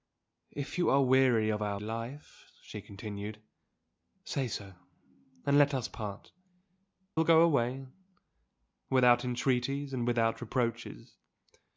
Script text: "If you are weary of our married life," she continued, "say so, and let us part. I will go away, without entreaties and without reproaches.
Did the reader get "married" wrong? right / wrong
wrong